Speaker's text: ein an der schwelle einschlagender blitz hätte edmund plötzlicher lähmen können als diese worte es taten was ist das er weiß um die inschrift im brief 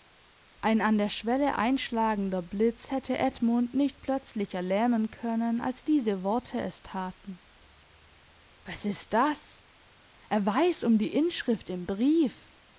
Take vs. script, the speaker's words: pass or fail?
fail